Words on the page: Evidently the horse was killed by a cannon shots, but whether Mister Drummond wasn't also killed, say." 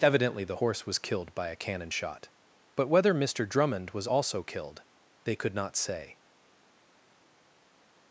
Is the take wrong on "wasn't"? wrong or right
wrong